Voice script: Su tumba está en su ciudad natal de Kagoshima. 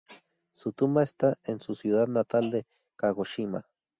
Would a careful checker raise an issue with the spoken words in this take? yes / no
no